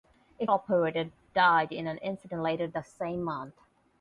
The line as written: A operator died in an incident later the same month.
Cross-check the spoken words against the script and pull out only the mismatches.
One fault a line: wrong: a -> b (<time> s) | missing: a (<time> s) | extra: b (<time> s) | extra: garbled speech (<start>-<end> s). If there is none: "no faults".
no faults